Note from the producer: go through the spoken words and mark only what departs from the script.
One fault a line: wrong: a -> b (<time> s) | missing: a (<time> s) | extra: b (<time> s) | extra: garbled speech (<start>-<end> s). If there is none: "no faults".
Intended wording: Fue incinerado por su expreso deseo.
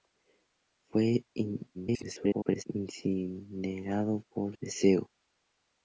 extra: garbled speech (1.7-2.6 s)
missing: su expreso (4.6 s)